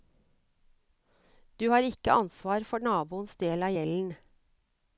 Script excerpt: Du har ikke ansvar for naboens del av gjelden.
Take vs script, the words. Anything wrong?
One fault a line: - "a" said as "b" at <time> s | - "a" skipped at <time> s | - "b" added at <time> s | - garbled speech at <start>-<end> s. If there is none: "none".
none